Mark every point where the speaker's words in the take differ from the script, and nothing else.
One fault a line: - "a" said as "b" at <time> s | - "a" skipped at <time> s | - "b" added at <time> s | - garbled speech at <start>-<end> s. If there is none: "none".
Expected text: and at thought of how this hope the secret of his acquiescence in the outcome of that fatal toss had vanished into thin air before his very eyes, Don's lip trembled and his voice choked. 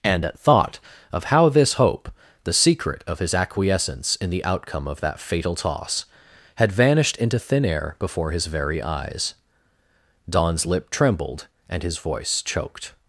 none